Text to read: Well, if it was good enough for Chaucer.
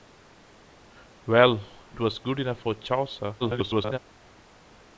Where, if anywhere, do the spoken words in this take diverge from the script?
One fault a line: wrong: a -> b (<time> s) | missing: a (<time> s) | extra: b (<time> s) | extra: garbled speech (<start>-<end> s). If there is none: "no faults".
missing: if (1.6 s)
extra: garbled speech (3.4-4.0 s)